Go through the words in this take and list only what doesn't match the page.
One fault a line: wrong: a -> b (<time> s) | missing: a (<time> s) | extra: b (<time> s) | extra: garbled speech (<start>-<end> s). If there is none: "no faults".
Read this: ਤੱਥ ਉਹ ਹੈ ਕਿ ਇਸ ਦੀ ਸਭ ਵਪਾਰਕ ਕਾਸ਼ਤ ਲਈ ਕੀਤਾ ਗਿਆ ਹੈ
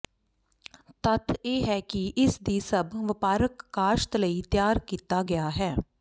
wrong: ਉਹ -> ਇਹ (1.4 s)
extra: ਤਿਆਰ (4.5 s)